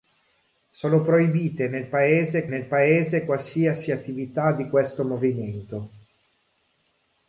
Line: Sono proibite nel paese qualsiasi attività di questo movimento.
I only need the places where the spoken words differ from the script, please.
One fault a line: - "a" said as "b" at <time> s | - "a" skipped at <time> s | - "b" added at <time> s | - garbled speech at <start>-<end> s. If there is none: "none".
- "nel paese" added at 2.5 s